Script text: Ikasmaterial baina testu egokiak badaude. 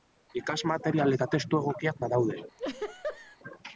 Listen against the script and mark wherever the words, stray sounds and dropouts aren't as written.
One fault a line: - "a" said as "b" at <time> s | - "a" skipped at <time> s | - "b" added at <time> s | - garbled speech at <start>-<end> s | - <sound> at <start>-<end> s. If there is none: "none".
- "baina" said as "eta" at 1.2 s
- laugh at 2.6-3.4 s